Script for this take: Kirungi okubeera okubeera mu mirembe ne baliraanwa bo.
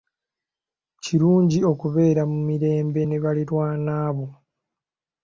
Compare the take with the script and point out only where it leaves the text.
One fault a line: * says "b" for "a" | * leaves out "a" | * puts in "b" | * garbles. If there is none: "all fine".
* leaves out "okubeera"